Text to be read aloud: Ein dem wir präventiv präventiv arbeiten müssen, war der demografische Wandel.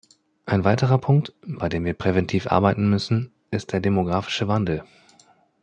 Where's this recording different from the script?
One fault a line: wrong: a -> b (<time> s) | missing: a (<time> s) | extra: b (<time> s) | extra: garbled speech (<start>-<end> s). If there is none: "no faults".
extra: weiterer Punkt bei (0.6 s)
missing: präventiv (2.5 s)
wrong: war -> ist (3.5 s)